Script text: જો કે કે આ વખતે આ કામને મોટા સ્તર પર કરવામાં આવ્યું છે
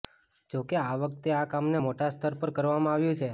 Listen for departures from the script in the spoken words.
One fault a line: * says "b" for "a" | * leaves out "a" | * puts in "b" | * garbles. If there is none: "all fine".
* leaves out "કે"